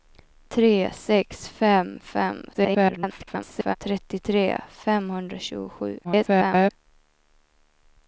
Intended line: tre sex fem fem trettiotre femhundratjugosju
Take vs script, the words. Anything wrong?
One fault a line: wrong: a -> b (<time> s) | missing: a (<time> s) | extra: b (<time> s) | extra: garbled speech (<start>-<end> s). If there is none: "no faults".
extra: garbled speech (2.5-3.8 s)
extra: garbled speech (6.0-6.7 s)